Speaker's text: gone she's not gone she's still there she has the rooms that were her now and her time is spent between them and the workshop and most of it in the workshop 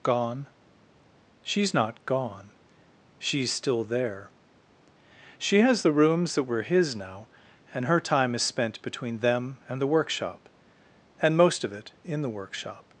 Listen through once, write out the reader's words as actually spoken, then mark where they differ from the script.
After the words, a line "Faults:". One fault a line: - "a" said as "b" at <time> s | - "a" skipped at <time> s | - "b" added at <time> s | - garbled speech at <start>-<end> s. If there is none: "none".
gone she's not gone she's still there she has the rooms that were his now and her time is spent between them and the workshop and most of it in the workshop
Faults:
- "her" said as "his" at 6.6 s